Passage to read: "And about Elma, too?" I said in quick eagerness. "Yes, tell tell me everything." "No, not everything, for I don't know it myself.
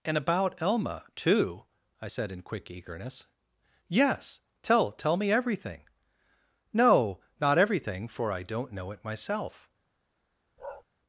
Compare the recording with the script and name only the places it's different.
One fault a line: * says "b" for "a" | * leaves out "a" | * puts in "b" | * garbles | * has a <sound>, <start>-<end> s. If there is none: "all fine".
* has a bark, 10.6-10.8 s